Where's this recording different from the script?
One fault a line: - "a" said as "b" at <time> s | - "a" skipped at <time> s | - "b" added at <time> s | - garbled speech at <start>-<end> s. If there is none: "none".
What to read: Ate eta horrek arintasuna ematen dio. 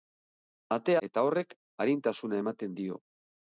none